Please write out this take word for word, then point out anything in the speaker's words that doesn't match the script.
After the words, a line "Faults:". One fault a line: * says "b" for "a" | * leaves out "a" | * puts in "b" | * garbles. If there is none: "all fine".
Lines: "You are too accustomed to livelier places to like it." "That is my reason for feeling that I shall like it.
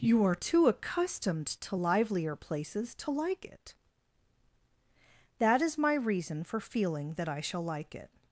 "You are too accustomed to livelier places to like it." "That is my reason for feeling that I shall like it.
Faults:
all fine